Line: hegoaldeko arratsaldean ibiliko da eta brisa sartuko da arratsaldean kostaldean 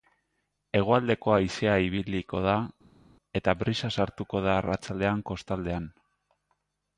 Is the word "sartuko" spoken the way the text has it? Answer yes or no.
yes